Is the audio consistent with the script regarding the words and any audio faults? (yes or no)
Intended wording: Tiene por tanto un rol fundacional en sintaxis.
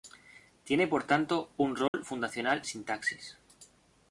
no